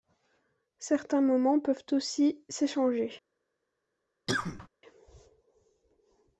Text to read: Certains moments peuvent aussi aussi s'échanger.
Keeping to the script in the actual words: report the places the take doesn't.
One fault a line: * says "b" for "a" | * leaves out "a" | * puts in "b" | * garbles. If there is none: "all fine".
* leaves out "aussi"